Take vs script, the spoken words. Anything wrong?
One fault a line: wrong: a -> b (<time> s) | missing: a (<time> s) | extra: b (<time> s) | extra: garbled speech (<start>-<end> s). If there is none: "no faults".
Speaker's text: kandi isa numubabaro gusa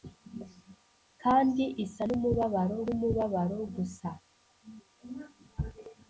extra: numubabaro (2.9 s)